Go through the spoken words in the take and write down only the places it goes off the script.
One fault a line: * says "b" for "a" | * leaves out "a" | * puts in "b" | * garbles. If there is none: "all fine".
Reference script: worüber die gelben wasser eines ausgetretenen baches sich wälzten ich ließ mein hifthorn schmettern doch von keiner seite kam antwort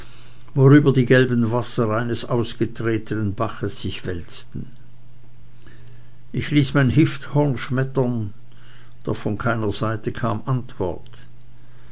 all fine